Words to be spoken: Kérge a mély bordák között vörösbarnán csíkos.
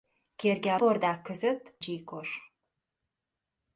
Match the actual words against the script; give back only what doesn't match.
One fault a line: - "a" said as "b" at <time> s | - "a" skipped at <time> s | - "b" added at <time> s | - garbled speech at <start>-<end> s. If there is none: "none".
- "mély" skipped at 0.8 s
- "vörösbarnán" skipped at 1.8 s